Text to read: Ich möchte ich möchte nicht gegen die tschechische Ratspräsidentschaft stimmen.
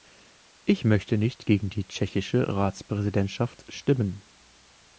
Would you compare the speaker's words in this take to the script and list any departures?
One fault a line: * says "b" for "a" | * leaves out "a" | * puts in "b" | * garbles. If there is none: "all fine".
* leaves out "ich möchte"